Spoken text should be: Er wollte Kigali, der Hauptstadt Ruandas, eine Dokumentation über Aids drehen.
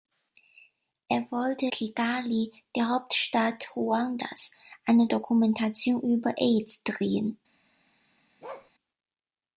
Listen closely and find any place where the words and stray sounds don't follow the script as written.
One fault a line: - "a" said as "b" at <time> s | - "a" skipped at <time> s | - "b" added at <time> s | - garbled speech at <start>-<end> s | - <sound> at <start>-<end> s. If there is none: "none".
- bark at 8.4-8.7 s